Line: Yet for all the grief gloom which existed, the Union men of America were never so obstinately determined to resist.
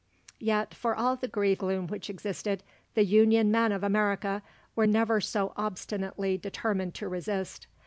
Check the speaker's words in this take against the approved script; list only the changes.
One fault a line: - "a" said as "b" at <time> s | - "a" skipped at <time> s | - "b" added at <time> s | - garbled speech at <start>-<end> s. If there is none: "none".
none